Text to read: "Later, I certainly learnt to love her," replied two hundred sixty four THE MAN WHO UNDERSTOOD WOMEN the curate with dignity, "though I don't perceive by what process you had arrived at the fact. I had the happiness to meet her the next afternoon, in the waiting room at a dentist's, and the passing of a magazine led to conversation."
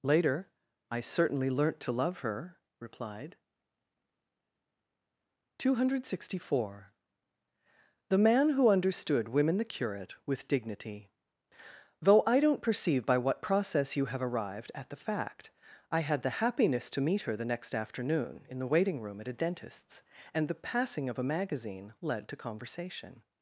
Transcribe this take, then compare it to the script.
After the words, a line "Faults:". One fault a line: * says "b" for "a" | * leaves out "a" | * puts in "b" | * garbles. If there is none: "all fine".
"Later, I certainly learnt to love her," replied two hundred sixty four THE MAN WHO UNDERSTOOD WOMEN the curate with dignity, "though I don't perceive by what process you have arrived at the fact. I had the happiness to meet her the next afternoon, in the waiting room at a dentist's, and the passing of a magazine led to conversation."
Faults:
* says "have" for "had"